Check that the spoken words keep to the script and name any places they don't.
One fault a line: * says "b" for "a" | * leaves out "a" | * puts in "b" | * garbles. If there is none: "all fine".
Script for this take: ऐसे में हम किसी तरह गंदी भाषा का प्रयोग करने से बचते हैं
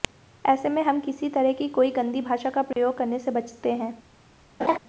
* puts in "की कोई"